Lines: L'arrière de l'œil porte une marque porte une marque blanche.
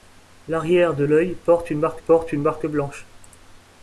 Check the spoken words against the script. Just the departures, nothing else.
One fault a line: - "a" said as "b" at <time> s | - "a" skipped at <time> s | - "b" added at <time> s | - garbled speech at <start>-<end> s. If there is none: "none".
none